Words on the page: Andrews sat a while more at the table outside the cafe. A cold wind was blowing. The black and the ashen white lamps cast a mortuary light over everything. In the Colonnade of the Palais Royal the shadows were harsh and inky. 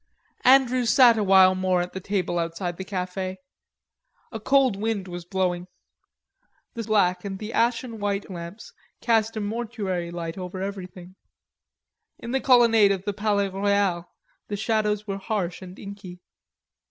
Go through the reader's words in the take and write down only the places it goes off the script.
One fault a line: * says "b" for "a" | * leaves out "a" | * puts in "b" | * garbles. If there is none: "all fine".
all fine